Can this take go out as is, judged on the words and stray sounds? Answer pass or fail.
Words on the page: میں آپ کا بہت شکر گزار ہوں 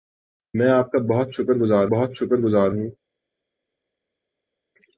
fail